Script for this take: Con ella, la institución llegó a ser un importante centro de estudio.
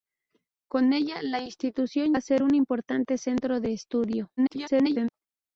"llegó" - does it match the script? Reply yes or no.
no